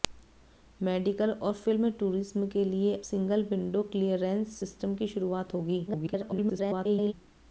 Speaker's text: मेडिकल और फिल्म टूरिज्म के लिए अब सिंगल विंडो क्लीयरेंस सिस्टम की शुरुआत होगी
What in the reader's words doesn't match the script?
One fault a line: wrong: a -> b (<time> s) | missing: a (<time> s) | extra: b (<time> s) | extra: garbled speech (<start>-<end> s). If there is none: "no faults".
missing: अब (3.0 s)
extra: garbled speech (5.9-7.1 s)